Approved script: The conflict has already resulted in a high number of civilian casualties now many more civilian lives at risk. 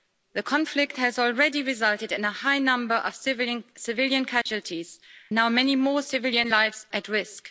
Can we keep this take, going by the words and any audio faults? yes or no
no